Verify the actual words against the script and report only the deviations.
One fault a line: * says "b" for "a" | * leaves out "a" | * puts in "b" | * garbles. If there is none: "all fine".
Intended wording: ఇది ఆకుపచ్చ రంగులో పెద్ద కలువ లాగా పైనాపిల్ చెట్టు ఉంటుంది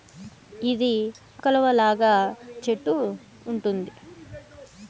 * leaves out "ఆకుపచ్చ రంగులో పెద్ద"
* leaves out "పైనాపిల్"